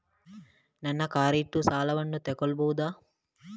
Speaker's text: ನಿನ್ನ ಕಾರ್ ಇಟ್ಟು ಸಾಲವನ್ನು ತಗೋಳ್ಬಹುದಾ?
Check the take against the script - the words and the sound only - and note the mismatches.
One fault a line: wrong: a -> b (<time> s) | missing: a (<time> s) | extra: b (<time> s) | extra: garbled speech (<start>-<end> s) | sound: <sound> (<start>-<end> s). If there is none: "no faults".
wrong: ನಿನ್ನ -> ನನ್ನ (0.8 s)